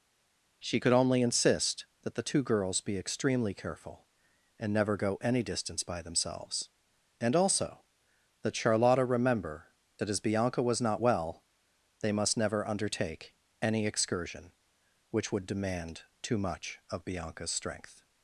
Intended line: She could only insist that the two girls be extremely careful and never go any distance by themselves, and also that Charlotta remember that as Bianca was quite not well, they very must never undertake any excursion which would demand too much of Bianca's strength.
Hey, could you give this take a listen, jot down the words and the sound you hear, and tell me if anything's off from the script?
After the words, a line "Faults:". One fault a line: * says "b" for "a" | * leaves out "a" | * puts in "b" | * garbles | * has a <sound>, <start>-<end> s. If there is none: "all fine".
She could only insist that the two girls be extremely careful and never go any distance by themselves, and also that Charlotta remember that as Bianca was not well, they must never undertake any excursion which would demand too much of Bianca's strength.
Faults:
* leaves out "quite"
* leaves out "very"